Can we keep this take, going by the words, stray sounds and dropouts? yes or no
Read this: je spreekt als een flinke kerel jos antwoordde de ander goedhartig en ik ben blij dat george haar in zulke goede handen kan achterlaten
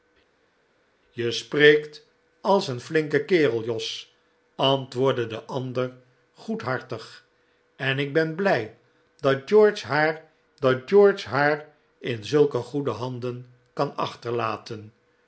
no